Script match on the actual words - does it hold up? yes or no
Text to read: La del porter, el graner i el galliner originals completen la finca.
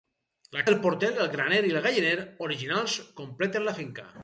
yes